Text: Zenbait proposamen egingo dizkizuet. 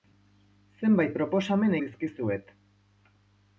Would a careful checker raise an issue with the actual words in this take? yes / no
yes